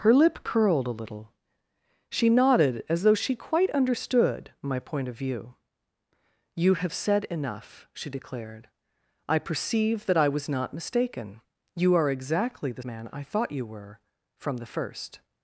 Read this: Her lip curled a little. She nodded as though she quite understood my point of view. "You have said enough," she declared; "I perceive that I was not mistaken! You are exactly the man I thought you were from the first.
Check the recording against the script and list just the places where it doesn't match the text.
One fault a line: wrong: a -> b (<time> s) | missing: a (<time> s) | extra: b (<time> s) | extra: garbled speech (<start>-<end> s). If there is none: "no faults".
no faults